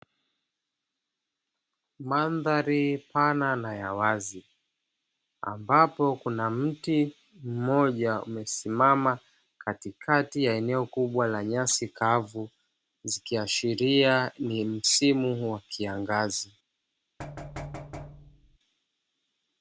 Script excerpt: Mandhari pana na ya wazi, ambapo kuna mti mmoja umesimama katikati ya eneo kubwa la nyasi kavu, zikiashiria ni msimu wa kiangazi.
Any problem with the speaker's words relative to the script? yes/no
no